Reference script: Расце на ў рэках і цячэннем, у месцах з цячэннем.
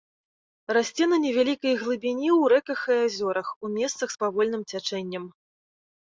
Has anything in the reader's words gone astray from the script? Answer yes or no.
yes